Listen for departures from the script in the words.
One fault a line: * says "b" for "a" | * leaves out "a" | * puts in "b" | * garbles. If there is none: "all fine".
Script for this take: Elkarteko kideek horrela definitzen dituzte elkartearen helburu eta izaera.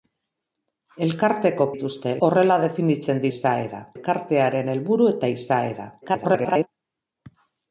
* says "dituzte" for "kideek"
* says "izaera" for "dituzte"
* garbles